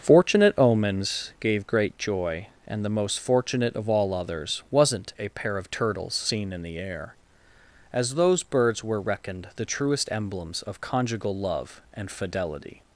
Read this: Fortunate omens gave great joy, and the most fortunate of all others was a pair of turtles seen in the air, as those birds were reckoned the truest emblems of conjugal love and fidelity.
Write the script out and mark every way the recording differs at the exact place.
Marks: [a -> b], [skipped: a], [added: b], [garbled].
Fortunate omens gave great joy, and the most fortunate of all others [was -> wasn't] a pair of turtles seen in the air, as those birds were reckoned the truest emblems of conjugal love and fidelity.